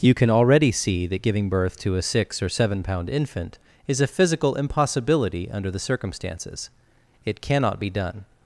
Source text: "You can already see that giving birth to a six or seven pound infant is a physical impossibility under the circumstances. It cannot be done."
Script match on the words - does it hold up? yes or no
yes